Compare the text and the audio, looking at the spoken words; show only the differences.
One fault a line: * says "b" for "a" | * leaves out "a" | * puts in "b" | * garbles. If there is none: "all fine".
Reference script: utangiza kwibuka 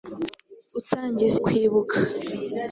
all fine